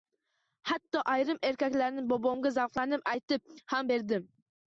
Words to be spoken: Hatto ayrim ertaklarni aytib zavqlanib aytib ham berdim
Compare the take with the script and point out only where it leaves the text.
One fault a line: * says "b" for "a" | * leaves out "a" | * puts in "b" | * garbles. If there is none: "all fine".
* says "bobomga" for "aytib"